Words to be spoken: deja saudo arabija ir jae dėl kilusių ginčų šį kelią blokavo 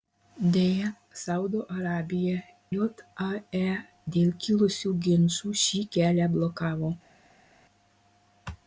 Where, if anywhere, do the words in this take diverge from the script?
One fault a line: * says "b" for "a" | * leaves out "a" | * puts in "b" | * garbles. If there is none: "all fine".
* leaves out "ir"